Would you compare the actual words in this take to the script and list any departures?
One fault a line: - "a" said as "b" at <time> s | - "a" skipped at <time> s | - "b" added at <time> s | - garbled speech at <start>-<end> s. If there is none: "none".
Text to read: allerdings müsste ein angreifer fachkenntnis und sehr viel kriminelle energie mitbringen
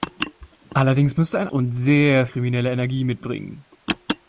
- "angreifer fachkenntnis" skipped at 1.5 s
- "viel" skipped at 2.3 s